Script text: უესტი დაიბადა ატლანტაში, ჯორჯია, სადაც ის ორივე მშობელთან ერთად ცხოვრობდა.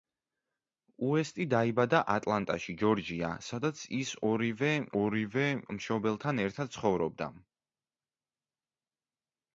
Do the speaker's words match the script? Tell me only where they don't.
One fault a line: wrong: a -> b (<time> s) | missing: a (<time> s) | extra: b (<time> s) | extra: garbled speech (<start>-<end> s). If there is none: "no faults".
extra: ორივე (5.0 s)